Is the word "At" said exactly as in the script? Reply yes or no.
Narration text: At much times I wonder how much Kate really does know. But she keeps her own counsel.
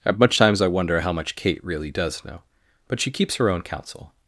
yes